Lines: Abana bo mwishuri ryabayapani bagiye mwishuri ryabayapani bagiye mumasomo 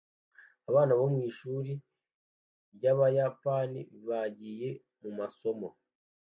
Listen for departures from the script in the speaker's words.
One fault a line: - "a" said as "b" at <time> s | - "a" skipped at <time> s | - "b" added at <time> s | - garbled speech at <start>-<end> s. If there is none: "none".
- "mwishuri ryabayapani bagiye" skipped at 4.7 s